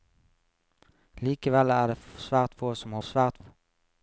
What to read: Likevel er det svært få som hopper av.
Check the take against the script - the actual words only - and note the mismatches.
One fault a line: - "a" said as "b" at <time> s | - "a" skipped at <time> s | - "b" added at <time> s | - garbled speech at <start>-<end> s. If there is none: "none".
- "hopper" said as "svært" at 3.1 s